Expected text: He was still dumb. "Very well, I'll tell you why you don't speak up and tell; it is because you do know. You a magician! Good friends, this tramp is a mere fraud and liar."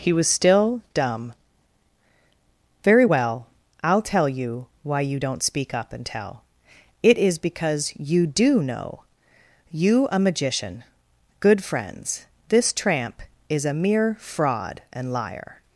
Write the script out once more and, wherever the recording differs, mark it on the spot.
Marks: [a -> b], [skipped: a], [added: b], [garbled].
He was still dumb. "Very well, I'll tell you why you don't speak up and tell; it is because you do know. You a magician! Good friends, this tramp is a mere fraud and liar."